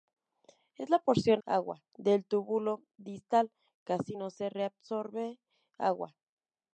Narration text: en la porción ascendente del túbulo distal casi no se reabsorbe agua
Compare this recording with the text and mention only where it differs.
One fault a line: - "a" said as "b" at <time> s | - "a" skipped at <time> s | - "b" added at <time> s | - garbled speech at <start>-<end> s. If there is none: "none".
- "ascendente" said as "agua" at 1.4 s